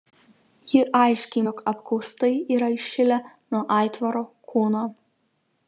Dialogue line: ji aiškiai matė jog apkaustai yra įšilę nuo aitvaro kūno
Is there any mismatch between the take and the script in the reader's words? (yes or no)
yes